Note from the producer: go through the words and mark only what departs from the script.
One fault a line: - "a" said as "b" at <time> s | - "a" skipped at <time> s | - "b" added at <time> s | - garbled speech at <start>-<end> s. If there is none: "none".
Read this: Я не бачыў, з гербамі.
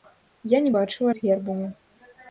none